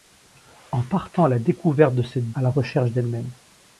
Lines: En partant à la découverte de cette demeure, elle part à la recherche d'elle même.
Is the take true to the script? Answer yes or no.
no